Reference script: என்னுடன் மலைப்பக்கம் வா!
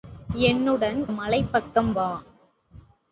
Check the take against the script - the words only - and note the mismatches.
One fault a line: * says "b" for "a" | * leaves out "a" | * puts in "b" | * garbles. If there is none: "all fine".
all fine